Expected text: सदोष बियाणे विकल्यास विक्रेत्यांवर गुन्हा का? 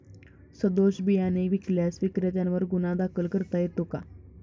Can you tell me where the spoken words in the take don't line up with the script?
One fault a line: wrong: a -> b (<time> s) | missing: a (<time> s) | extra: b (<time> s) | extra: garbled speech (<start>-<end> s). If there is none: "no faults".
extra: दाखल करता येतो (3.0 s)